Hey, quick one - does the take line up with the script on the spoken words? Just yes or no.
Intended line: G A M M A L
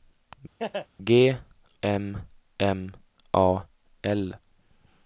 no